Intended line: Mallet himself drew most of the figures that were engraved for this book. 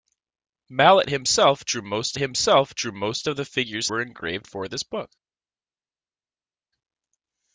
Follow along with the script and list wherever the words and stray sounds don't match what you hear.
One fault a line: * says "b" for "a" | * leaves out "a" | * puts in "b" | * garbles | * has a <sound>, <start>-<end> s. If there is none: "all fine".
* puts in "himself drew most"
* leaves out "that"